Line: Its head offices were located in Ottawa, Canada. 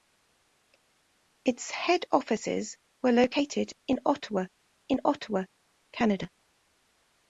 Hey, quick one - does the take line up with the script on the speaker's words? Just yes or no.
no